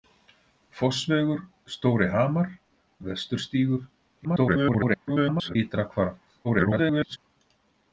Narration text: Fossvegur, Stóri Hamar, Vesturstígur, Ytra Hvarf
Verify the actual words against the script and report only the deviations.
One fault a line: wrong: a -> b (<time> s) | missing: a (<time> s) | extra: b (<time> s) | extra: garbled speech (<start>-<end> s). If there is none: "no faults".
extra: garbled speech (4.2-5.6 s)
extra: garbled speech (6.4-7.2 s)